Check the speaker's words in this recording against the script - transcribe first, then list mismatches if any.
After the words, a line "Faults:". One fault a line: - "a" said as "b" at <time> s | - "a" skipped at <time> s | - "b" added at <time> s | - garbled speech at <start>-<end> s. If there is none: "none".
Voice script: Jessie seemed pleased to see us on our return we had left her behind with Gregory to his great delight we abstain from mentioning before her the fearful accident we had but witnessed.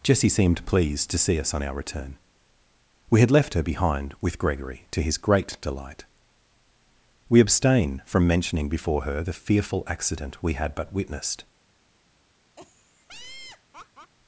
Jessie seemed pleased to see us on our return we had left her behind with Gregory to his great delight we abstain from mentioning before her the fearful accident we had but witnessed.
Faults:
none